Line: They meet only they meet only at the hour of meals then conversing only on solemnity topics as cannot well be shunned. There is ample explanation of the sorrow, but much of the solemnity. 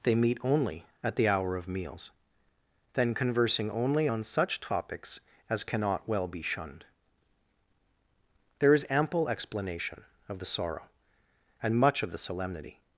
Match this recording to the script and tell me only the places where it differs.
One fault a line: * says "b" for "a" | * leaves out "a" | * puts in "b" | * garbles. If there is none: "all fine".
* leaves out "they meet only"
* says "such" for "solemnity"
* says "and" for "but"